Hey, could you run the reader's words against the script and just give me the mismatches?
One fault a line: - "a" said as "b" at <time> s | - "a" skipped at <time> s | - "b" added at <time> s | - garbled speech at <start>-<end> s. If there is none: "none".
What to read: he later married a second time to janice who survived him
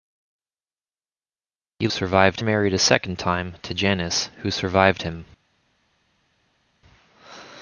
- "later" said as "survived" at 1.9 s